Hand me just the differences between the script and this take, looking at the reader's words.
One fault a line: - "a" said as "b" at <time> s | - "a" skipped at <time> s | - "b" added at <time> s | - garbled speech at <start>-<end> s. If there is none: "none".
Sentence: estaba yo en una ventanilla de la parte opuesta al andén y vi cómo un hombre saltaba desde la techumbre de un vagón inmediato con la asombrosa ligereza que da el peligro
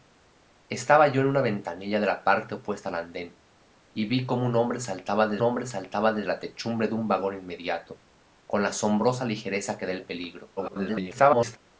- "hombre saltaba desde" added at 5.4 s
- garbled speech at 10.6-11.6 s